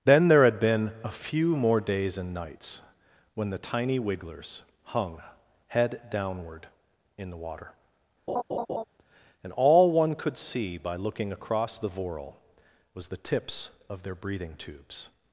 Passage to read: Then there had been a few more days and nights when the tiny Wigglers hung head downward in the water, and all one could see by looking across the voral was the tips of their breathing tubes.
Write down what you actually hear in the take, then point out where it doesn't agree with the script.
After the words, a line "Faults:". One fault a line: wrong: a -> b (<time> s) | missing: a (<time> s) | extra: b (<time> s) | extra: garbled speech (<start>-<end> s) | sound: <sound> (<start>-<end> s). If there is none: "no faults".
Then there had been a few more days and nights when the tiny Wigglers hung head downward in the water, and all one could see by looking across the voral was the tips of their breathing tubes.
Faults:
sound: laugh (8.3-8.8 s)